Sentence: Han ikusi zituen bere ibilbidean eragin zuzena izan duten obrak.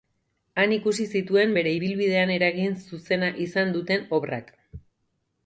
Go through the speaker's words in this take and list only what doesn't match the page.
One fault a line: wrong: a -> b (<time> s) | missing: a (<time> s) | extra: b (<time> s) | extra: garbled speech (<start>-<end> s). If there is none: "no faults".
no faults